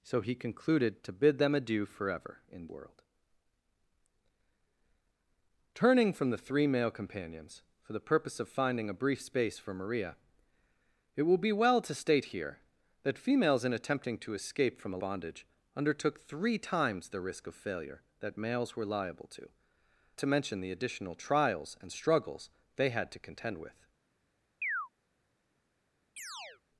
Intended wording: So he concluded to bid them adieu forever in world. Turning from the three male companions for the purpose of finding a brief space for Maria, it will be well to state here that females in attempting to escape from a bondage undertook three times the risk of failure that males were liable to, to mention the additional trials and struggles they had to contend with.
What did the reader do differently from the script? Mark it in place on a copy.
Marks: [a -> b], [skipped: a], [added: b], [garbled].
So he concluded to bid them adieu forever in world. Turning from the three male companions for the purpose of finding a brief space for Maria, it will be well to state here that females in attempting to escape from a bondage undertook three times the risk of failure that males were liable to, to mention the additional trials and struggles they had to contend with.